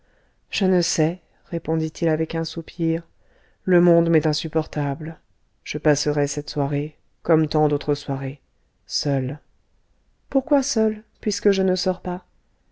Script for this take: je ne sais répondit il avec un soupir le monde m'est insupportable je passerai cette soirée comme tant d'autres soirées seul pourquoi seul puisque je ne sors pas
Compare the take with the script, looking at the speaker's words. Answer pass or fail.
pass